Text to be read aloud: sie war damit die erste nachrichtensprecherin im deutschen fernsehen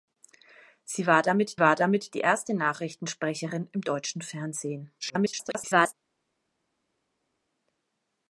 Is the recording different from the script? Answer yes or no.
yes